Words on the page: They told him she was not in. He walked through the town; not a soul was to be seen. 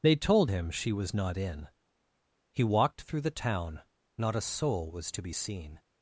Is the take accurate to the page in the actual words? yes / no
yes